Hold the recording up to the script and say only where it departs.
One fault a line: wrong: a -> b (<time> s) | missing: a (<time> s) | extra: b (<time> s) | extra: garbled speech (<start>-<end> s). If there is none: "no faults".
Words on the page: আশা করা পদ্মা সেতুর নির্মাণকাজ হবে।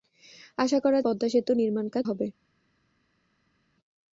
no faults